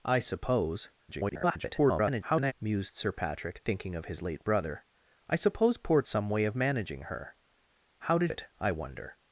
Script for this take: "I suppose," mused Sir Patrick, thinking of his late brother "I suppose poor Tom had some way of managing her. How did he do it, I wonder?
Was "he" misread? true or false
true